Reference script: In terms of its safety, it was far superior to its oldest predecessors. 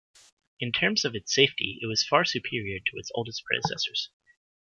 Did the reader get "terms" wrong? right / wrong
right